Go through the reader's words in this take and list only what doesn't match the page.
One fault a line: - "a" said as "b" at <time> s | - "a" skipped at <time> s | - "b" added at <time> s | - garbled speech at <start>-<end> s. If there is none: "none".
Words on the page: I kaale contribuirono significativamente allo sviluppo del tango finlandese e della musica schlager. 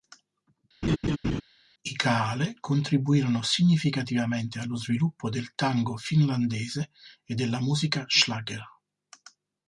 none